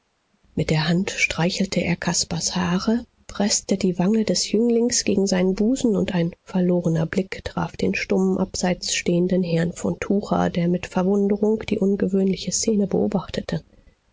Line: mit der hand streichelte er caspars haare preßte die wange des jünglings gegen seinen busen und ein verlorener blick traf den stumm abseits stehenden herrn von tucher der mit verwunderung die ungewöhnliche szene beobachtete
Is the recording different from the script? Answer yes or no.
no